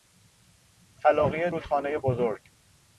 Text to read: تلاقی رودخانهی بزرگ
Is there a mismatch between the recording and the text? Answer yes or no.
no